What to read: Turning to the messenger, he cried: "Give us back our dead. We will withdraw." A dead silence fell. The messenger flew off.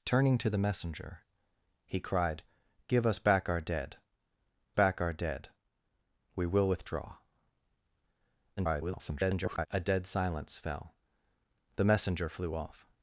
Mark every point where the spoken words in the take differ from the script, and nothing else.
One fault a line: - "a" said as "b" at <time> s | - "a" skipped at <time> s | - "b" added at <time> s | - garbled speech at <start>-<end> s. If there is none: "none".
- "back our dead" added at 4.7 s
- garbled speech at 8.6-9.7 s